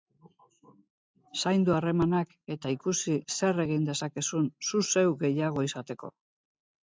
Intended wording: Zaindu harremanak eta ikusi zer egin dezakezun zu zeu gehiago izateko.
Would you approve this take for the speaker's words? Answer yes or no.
yes